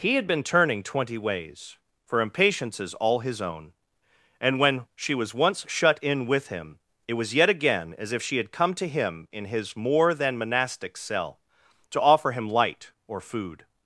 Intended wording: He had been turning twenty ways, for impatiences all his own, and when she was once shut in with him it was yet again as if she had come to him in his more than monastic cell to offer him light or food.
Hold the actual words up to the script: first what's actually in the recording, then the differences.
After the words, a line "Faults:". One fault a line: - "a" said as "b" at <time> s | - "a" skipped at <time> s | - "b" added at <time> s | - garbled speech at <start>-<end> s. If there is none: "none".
He had been turning twenty ways, for impatiences all his own, and when she was once shut in with him it was yet again as if she had come to him in his more than monastic cell to offer him light or food.
Faults:
none